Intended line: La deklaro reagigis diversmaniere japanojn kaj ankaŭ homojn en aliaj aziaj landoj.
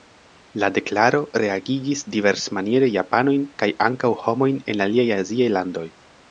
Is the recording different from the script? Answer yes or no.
no